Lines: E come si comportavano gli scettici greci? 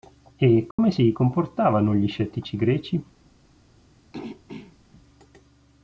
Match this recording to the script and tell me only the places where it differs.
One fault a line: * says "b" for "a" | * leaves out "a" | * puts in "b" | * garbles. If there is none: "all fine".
all fine